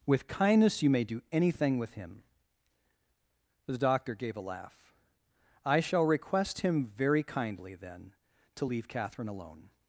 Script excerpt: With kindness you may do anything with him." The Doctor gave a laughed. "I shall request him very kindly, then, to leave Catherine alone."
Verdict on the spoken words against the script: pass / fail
fail